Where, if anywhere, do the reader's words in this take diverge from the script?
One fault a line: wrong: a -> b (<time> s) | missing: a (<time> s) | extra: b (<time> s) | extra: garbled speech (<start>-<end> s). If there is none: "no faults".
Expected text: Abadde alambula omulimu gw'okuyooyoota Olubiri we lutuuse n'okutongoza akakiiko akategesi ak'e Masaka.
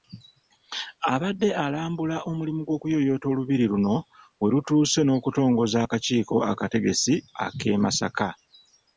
extra: luno (3.7 s)